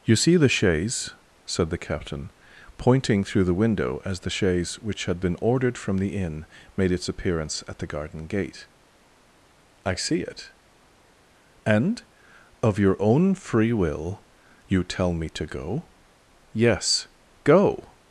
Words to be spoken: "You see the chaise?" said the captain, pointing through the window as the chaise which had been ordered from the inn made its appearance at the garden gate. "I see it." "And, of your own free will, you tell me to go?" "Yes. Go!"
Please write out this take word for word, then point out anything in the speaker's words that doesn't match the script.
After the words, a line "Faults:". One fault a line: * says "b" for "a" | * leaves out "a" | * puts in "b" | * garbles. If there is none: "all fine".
"You see the chaise?" said the captain, pointing through the window as the chaise which had been ordered from the inn made its appearance at the garden gate. "I see it." "And, of your own free will, you tell me to go?" "Yes. Go!"
Faults:
all fine